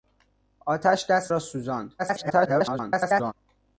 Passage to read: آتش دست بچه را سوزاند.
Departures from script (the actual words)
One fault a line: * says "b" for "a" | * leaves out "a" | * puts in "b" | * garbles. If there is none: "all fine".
* leaves out "بچه"
* garbles